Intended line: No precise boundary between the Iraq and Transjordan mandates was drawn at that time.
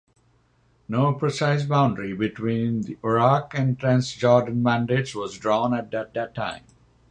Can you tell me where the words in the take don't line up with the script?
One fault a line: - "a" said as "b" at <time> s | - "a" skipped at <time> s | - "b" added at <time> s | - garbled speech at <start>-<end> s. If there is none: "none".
- "that" added at 6.1 s